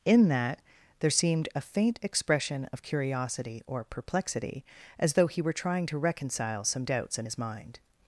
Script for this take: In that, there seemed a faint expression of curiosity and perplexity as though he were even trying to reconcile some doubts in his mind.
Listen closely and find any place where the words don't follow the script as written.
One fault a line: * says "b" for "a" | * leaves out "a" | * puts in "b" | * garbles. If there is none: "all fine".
* says "or" for "and"
* leaves out "even"